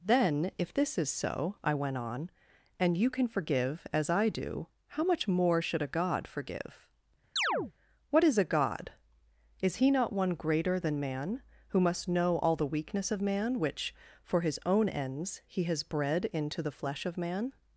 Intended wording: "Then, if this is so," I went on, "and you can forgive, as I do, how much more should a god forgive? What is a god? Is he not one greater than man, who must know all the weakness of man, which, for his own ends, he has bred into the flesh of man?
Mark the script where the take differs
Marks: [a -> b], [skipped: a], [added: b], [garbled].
"Then, if this is so," I went on, "and you can forgive, as I do, how much more should a god forgive? What is a god? Is he not one greater than man, who must know all the weakness of man, which, for his own ends, he has bred into the flesh of man?